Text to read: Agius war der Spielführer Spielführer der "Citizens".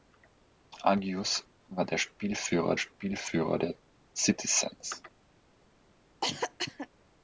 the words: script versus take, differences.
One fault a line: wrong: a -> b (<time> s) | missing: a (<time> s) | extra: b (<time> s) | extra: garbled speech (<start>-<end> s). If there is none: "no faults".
no faults